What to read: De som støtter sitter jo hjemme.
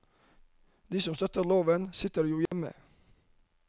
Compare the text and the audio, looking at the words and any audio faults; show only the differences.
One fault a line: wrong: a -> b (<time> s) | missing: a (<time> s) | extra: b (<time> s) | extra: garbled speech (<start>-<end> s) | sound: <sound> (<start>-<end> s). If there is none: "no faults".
extra: loven (1.4 s)
sound: dropout (2.5-2.5 s)